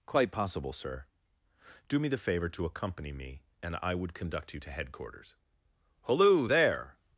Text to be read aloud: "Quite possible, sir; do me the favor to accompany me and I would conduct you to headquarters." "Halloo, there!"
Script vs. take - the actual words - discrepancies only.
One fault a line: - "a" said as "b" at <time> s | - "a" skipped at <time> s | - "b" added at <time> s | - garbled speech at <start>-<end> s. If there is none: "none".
none